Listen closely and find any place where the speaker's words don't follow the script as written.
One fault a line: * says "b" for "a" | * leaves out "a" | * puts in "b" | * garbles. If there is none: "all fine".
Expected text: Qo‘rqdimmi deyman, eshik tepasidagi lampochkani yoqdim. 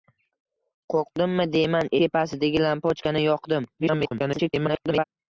* leaves out "eshik"
* garbles